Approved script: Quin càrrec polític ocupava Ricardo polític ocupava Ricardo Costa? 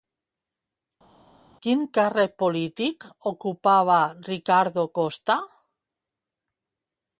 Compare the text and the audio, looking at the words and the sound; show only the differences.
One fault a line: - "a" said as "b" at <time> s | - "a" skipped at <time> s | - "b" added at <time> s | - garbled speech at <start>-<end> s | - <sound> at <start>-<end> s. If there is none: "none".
- "polític ocupava Ricardo" skipped at 4.9 s